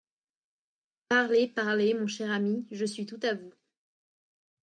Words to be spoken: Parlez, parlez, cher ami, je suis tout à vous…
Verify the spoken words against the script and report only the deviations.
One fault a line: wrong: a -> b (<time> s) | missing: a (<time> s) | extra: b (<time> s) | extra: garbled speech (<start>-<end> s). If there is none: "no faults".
extra: mon (1.9 s)